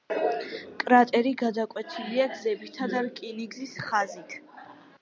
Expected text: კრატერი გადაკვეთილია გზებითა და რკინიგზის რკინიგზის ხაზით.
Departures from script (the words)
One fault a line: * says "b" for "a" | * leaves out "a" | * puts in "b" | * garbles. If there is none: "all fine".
* leaves out "რკინიგზის"